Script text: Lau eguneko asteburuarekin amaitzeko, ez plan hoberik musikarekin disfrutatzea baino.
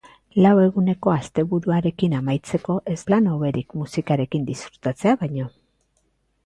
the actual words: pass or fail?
pass